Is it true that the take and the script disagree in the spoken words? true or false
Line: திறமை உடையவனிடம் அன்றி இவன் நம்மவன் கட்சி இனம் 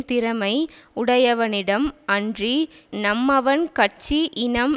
true